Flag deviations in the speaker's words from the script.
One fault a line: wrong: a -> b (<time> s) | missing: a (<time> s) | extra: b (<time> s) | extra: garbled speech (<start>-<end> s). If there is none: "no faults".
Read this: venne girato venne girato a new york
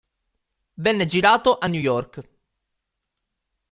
missing: venne girato (1.6 s)